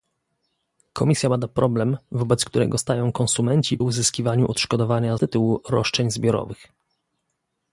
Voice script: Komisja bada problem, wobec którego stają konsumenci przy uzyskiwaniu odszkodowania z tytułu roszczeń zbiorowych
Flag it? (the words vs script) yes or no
yes